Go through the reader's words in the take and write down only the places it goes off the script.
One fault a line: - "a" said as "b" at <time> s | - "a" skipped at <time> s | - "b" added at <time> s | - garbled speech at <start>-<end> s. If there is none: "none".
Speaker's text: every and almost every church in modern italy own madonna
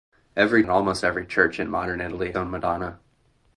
none